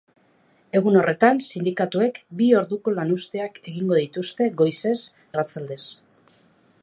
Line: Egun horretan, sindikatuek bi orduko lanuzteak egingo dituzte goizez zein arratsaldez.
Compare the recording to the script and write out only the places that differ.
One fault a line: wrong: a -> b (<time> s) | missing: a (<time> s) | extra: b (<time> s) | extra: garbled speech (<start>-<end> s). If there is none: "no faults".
missing: zein (5.0 s)